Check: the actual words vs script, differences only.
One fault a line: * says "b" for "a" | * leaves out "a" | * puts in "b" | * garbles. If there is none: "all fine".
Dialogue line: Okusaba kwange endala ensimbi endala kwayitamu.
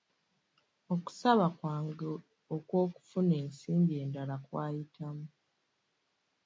* says "okw'okufuna" for "endala"